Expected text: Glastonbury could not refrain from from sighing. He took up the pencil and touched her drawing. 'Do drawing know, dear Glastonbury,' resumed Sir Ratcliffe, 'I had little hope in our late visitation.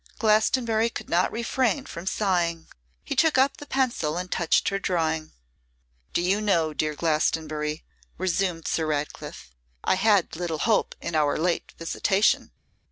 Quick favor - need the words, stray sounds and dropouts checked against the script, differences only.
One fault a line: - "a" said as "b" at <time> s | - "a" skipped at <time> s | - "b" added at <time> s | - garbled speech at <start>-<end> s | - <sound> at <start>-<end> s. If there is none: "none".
- "from" skipped at 2.1 s
- "drawing" said as "you" at 6.2 s